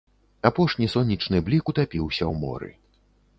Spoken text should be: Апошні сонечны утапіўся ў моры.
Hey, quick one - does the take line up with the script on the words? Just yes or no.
no